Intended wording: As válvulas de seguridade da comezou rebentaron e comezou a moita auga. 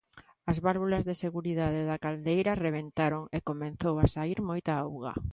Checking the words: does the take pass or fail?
fail